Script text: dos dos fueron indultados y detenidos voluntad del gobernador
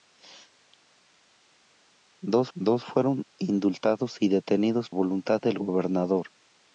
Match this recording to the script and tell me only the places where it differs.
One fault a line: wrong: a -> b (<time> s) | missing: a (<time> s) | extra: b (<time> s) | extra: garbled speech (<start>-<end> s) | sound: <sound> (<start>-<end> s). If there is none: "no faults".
no faults